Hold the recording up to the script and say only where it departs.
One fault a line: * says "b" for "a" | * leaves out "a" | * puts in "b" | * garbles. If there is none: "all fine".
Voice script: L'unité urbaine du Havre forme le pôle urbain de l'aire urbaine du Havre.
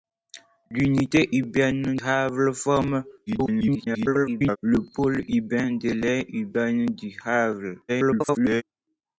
* leaves out "du"
* garbles
* garbles